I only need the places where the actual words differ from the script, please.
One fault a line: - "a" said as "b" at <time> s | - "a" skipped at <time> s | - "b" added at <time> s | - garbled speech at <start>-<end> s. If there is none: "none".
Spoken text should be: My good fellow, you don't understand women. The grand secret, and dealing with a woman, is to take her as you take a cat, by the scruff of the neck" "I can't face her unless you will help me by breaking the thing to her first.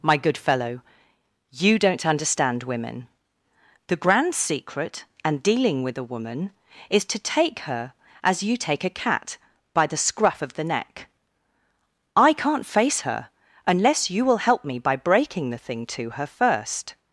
none